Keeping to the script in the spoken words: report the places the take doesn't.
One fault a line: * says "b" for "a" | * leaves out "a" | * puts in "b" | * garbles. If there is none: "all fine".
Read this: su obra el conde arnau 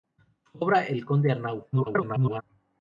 * garbles